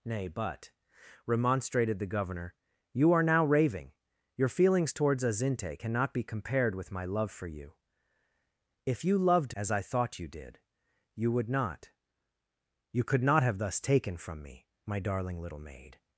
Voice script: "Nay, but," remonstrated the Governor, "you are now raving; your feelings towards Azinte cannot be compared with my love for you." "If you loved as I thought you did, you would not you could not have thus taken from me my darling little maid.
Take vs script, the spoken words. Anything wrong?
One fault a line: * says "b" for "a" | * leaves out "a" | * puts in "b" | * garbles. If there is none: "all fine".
all fine